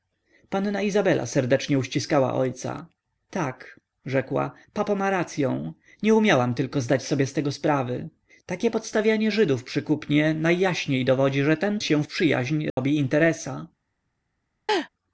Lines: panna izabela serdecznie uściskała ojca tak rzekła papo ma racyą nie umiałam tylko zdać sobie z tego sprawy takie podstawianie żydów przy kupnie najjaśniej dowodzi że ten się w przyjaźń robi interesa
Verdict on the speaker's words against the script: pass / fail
pass